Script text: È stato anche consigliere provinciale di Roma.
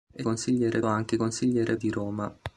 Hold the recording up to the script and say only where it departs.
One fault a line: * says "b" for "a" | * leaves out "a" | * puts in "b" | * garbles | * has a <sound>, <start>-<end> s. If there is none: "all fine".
* says "consigliere" for "stato"
* leaves out "provinciale"